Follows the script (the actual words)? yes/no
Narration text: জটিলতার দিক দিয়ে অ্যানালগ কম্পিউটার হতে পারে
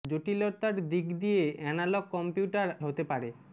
yes